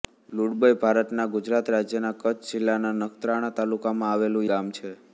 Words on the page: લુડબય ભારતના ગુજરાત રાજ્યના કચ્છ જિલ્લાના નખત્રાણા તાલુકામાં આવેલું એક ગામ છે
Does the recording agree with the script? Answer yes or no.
no